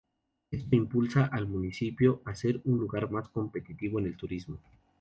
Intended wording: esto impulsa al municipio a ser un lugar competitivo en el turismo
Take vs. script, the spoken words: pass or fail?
fail